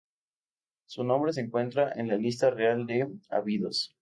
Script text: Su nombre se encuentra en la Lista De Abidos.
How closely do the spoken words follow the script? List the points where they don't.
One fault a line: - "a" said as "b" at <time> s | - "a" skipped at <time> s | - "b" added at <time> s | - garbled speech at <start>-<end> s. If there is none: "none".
- "Real" added at 2.5 s